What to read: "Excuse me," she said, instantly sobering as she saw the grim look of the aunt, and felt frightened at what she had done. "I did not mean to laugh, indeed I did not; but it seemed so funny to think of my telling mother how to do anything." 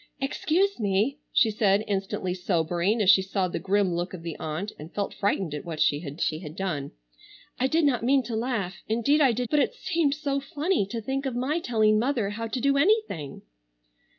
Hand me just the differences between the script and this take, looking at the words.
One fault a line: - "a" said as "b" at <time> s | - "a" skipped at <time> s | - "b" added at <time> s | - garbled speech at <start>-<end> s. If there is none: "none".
- "she had" added at 6.2 s
- "not" skipped at 9.5 s